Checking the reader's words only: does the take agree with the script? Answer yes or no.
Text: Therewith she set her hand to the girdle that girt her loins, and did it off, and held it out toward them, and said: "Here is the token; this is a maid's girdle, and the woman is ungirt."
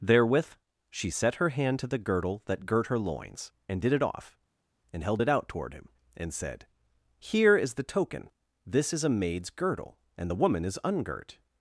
no